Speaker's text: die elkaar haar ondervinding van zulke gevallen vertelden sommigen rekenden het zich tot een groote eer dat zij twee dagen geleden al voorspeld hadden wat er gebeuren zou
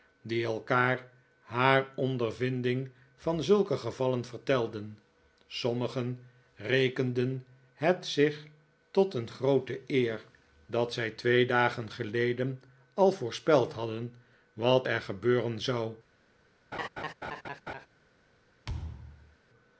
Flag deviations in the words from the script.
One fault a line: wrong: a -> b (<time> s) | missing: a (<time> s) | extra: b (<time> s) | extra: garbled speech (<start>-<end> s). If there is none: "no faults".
no faults